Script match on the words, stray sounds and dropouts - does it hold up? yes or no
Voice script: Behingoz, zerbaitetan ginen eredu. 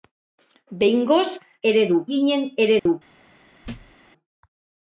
no